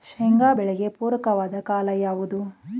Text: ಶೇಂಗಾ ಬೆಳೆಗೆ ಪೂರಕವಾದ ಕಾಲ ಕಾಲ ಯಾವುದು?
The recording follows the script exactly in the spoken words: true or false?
false